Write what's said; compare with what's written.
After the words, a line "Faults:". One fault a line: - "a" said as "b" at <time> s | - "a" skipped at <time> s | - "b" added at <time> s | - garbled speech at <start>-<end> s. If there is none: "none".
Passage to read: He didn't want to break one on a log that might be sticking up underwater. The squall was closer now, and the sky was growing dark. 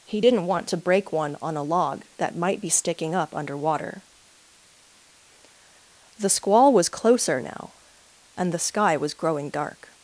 He didn't want to break one on a log that might be sticking up underwater. The squall was closer now, and the sky was growing dark.
Faults:
none